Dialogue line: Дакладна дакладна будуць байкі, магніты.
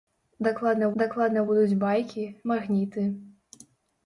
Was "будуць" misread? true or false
false